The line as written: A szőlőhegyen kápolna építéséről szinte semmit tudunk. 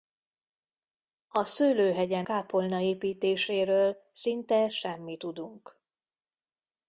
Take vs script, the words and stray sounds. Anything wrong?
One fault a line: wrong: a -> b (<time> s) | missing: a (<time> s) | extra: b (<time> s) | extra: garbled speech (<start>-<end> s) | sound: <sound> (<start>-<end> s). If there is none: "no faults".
no faults